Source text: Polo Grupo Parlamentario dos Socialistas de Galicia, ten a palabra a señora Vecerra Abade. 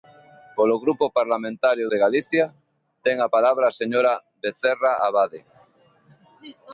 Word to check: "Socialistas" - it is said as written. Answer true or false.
false